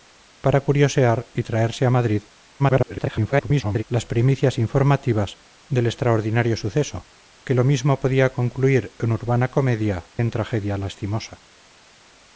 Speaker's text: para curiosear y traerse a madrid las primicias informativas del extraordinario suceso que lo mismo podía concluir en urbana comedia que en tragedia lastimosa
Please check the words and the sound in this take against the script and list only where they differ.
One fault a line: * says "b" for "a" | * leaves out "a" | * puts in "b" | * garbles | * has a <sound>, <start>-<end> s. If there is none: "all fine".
* garbles
* leaves out "que"